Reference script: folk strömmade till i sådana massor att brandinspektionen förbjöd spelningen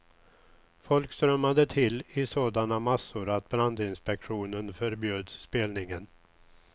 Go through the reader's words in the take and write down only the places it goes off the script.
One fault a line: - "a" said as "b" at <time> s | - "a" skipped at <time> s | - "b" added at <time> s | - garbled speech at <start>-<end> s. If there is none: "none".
none